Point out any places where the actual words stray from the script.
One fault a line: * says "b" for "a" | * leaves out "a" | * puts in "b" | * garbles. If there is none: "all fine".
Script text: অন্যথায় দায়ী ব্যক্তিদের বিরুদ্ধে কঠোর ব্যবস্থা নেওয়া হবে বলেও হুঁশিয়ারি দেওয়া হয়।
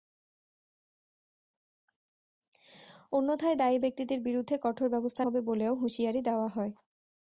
* leaves out "নেওয়া"